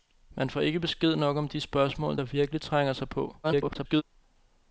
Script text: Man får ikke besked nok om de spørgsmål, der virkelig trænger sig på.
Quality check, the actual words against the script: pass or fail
fail